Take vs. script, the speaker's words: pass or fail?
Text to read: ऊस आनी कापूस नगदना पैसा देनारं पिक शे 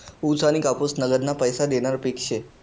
pass